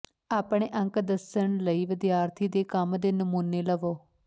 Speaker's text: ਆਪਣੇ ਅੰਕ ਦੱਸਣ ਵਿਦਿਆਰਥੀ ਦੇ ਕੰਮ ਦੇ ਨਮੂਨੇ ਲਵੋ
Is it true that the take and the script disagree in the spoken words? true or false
true